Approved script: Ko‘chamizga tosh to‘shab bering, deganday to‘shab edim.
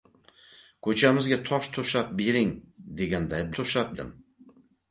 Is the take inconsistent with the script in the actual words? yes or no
no